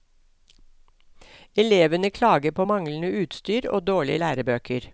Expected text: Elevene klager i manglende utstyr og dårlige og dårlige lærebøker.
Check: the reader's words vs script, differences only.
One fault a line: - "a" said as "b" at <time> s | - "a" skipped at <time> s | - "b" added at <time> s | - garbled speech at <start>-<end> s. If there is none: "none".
- "i" said as "på" at 2.5 s
- "og dårlige" skipped at 4.2 s